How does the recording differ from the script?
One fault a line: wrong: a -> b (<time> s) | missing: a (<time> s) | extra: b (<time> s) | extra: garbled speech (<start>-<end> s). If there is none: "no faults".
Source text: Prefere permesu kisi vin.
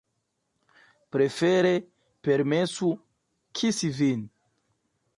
no faults